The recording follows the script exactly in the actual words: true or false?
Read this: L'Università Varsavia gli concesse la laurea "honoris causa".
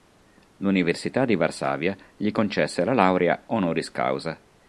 false